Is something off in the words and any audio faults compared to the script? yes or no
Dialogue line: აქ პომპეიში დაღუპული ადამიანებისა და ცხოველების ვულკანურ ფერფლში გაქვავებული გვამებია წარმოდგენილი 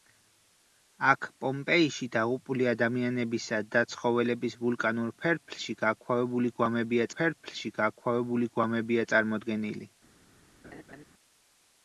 yes